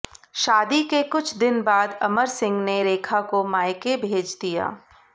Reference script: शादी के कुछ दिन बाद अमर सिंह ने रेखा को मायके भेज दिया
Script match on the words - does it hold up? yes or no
yes